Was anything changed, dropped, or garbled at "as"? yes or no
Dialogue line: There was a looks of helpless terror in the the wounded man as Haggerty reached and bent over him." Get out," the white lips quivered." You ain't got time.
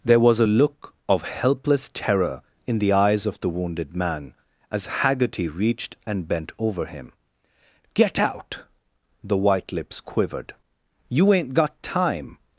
no